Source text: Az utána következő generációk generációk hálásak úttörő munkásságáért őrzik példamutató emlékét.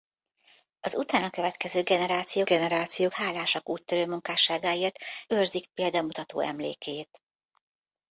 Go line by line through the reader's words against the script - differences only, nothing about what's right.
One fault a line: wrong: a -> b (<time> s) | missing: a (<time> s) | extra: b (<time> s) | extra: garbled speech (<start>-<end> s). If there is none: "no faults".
no faults